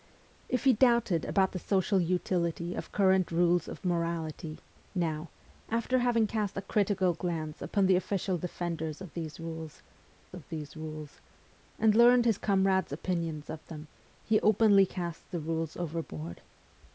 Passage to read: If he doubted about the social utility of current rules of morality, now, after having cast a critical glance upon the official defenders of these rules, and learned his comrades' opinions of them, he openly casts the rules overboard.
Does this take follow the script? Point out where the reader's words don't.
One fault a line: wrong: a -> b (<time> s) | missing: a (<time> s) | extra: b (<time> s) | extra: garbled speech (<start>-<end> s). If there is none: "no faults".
extra: of these rules (10.3 s)